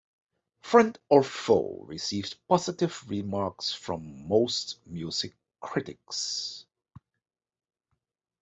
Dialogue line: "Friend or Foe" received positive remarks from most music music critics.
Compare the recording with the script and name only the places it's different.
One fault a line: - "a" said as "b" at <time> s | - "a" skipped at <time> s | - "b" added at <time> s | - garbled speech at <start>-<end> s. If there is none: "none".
- "music" skipped at 5.3 s